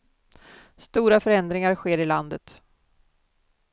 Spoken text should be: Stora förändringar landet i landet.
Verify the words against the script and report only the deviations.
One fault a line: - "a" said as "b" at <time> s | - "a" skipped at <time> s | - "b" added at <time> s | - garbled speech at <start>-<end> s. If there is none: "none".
- "landet" said as "sker" at 1.8 s